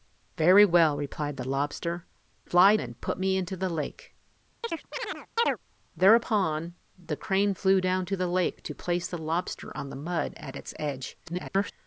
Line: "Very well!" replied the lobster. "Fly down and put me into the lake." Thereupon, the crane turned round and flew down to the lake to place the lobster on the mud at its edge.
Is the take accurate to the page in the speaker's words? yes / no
no